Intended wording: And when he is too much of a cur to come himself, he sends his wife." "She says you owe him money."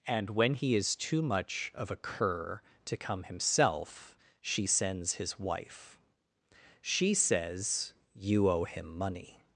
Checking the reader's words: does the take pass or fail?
fail